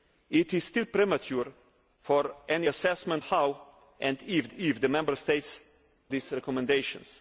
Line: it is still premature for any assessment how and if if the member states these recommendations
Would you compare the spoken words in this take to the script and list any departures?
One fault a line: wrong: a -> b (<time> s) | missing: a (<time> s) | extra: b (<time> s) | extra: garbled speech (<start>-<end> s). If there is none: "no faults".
no faults